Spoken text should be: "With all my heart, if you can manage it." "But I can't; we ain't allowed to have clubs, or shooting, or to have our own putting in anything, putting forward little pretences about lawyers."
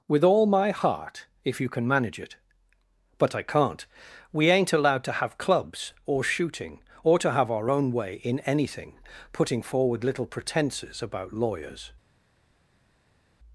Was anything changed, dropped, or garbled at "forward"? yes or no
no